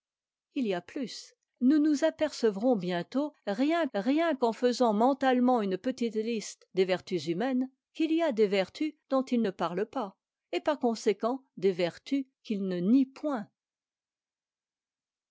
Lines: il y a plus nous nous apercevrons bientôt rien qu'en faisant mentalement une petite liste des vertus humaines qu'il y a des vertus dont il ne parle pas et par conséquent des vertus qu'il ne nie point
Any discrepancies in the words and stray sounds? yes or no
yes